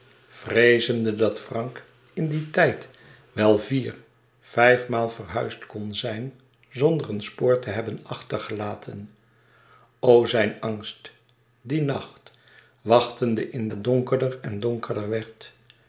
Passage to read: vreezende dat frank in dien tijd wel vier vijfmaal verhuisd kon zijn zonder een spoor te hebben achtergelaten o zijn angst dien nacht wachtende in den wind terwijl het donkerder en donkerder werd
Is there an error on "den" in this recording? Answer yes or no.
yes